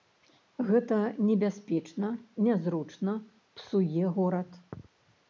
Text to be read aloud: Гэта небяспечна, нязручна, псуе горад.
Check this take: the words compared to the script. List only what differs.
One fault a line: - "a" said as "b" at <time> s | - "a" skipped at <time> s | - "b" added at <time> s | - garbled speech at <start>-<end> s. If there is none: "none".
none